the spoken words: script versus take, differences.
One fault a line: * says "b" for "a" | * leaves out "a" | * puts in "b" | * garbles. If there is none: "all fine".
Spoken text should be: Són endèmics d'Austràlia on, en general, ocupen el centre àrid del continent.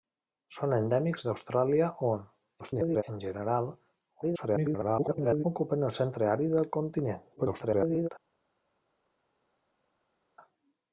* garbles
* garbles
* garbles